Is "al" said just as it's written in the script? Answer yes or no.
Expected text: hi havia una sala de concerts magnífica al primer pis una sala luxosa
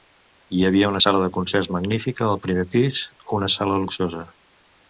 yes